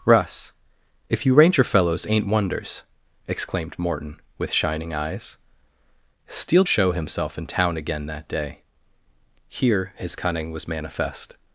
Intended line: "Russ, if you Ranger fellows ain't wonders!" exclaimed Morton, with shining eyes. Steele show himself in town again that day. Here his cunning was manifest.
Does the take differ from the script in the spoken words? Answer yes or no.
no